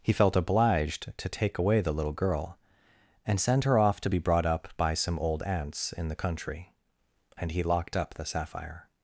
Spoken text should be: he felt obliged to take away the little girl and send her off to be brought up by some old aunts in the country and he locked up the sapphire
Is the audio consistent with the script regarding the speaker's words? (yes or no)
yes